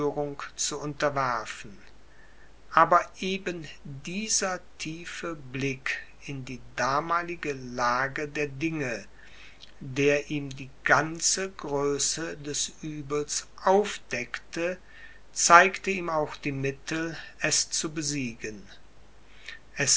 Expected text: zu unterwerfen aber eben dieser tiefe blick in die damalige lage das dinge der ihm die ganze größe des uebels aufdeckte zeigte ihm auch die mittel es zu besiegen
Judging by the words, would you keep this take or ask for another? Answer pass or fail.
fail